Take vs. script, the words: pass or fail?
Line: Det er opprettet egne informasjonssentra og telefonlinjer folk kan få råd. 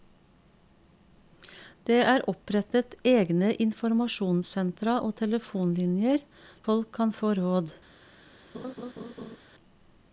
pass